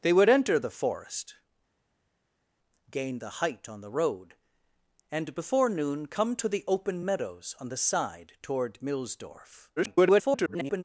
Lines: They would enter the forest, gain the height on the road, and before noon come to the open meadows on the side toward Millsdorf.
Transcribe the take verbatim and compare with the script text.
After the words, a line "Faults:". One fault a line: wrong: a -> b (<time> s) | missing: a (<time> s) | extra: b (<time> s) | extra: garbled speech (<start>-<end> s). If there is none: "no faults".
They would enter the forest, gain the height on the road, and before noon come to the open meadows on the side toward Millsdorf. [garbled]
Faults:
extra: garbled speech (9.8-10.8 s)